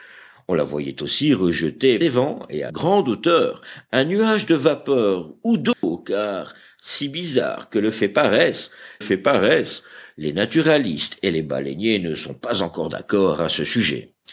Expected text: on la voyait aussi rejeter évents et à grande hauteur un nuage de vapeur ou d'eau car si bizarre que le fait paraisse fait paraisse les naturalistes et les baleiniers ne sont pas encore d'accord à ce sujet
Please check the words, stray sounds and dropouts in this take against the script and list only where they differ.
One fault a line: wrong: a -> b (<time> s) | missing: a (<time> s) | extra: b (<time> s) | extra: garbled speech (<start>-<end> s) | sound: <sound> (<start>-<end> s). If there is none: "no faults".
sound: dropout (5.7-5.8 s)